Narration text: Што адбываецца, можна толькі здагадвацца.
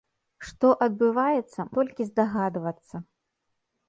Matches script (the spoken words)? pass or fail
fail